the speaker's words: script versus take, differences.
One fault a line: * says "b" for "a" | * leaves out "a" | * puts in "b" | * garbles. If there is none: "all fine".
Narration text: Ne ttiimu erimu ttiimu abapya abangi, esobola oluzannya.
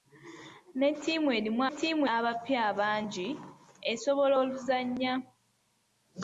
all fine